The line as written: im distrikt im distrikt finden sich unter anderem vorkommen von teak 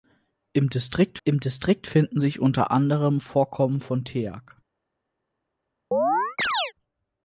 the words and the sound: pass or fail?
fail